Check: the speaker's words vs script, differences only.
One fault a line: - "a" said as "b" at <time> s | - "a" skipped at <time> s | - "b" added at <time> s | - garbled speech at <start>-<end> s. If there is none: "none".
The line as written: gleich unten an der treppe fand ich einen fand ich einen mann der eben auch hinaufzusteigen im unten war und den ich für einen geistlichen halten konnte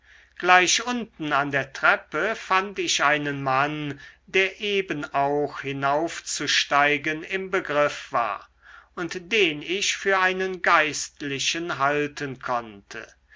- "fand ich einen" skipped at 3.4 s
- "unten" said as "begriff" at 7.5 s